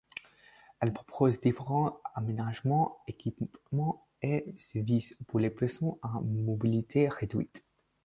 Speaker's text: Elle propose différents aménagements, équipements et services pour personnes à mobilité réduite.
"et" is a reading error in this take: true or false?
false